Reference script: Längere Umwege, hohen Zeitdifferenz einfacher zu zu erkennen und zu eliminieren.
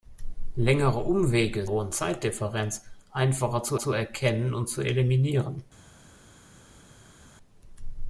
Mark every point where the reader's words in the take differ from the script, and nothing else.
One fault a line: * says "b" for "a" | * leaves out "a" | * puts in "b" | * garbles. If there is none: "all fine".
all fine